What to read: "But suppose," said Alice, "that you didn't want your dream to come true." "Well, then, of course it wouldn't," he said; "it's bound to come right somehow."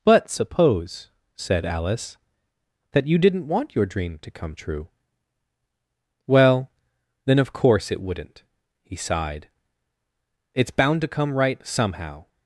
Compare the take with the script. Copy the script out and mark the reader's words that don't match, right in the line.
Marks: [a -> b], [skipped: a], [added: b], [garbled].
"But suppose," said Alice, "that you didn't want your dream to come true." "Well, then, of course it wouldn't," he [said; -> sighed] "it's bound to come right somehow."